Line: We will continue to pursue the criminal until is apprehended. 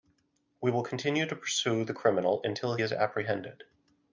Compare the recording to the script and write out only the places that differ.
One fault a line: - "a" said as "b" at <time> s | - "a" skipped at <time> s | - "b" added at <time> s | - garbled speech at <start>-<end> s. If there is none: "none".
none